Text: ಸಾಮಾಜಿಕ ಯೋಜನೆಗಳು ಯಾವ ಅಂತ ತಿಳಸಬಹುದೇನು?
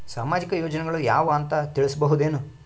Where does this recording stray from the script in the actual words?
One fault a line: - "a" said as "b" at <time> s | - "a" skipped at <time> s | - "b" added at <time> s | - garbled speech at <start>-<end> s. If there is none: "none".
none